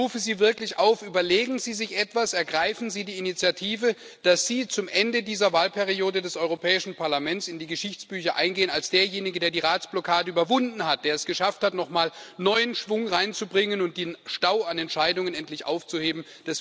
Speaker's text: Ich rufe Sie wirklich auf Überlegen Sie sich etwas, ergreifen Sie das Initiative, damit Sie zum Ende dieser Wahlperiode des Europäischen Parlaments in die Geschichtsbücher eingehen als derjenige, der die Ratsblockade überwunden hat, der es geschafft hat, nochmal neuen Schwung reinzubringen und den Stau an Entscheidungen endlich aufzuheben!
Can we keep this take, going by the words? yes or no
no